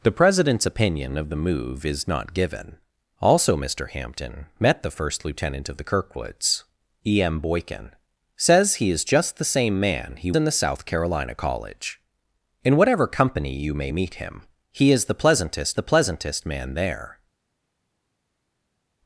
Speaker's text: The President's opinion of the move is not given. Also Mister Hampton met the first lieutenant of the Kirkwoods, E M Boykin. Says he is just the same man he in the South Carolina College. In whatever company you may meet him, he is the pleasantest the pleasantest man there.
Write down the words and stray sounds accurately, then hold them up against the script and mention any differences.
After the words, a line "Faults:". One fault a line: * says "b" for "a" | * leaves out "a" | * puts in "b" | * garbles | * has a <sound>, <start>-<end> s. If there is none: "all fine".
The President's opinion of the move is not given. Also Mister Hampton met the first lieutenant of the Kirkwoods, E M Boykin. Says he is just the same man he in the South Carolina College. In whatever company you may meet him, he is the pleasantest the pleasantest man there.
Faults:
all fine